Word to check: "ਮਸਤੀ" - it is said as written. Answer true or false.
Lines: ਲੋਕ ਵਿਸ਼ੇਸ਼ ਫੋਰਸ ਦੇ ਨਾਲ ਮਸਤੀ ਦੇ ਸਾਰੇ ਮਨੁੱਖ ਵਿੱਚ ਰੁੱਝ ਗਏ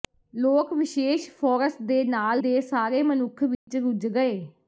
false